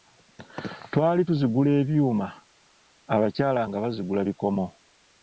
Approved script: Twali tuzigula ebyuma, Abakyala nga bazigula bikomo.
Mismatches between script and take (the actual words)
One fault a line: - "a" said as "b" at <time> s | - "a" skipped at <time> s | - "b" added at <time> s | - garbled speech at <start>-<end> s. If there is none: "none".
none